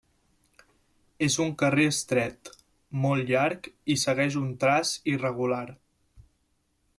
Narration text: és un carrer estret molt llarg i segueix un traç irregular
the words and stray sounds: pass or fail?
pass